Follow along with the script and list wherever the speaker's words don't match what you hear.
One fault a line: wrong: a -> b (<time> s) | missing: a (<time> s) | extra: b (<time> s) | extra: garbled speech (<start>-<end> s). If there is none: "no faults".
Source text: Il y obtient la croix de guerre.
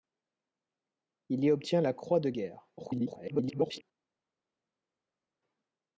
extra: garbled speech (2.8-3.8 s)